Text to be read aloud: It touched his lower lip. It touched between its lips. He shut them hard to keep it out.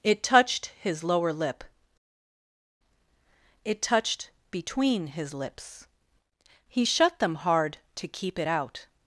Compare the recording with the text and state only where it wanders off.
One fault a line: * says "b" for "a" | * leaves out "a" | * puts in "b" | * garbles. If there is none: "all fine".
* says "his" for "its"